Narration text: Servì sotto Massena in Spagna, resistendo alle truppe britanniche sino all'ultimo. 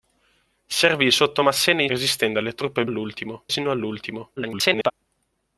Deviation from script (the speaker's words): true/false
true